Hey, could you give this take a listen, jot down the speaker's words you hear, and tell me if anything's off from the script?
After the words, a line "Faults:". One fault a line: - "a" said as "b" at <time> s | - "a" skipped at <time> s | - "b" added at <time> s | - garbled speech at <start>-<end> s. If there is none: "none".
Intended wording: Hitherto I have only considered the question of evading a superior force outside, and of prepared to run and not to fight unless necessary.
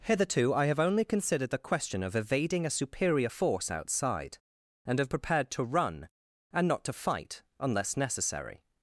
Hitherto I have only considered the question of evading a superior force outside, and of prepared to run and not to fight unless necessary.
Faults:
none